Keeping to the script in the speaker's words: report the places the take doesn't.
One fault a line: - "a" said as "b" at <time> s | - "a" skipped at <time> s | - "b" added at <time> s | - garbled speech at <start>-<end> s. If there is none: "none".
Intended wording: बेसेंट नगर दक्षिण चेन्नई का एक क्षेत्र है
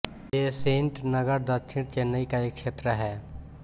none